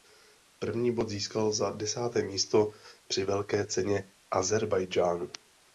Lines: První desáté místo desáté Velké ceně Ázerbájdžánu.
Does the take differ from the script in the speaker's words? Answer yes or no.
yes